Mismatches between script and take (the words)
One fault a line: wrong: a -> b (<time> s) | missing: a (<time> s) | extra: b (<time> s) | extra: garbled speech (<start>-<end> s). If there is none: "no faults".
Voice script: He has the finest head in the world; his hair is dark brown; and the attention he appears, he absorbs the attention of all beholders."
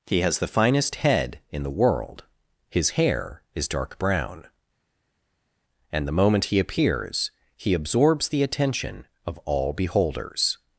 wrong: attention -> moment (6.1 s)